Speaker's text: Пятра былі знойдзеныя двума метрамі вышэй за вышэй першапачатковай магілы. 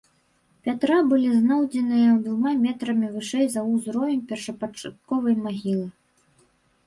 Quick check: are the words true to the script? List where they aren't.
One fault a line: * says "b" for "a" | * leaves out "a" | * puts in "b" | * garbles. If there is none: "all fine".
* says "ўзровень" for "вышэй"